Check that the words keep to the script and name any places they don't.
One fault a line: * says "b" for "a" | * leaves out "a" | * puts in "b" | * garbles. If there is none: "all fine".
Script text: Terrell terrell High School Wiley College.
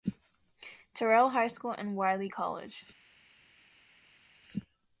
* leaves out "terrell"
* puts in "and"